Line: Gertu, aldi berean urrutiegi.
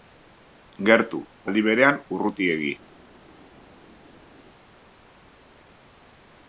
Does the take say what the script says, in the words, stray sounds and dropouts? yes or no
yes